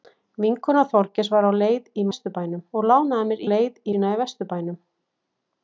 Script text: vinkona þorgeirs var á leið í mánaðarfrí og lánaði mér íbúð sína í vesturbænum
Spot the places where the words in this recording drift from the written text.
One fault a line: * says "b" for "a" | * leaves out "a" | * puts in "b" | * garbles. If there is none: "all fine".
* says "vesturbænum" for "mánaðarfrí"
* says "leið" for "íbúð"